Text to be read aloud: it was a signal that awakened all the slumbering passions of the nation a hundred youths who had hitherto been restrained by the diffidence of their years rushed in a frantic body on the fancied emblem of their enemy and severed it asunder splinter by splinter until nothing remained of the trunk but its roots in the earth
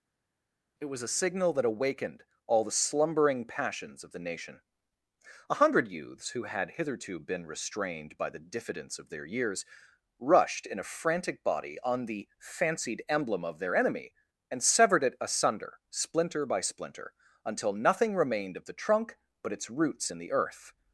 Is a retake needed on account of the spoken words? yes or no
no